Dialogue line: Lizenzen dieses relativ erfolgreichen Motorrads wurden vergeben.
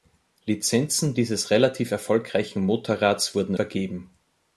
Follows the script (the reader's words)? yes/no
yes